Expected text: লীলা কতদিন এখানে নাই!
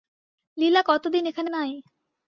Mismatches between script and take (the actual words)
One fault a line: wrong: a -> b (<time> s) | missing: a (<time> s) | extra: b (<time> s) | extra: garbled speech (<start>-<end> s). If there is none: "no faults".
no faults